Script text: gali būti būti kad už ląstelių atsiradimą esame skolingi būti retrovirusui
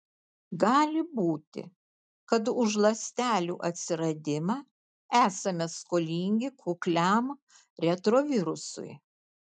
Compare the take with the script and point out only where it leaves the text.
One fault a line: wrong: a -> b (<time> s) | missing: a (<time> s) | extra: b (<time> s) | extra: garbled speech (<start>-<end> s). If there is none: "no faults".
missing: būti (1.6 s)
wrong: būti -> kukliam (6.7 s)